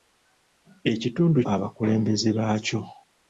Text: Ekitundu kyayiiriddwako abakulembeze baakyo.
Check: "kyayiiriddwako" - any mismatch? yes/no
yes